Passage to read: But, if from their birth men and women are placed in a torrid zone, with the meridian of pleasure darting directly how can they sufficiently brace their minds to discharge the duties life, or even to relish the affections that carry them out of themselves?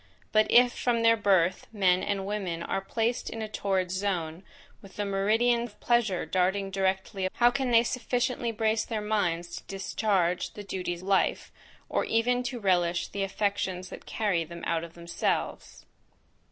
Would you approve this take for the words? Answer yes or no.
yes